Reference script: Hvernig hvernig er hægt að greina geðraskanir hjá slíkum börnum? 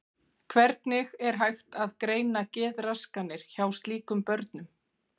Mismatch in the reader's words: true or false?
true